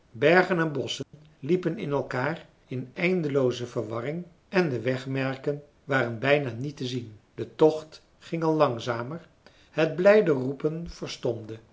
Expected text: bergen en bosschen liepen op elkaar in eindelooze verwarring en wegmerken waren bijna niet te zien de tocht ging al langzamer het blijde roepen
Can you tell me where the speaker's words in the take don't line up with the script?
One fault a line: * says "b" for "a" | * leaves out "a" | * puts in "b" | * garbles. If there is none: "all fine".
* says "in" for "op"
* puts in "de"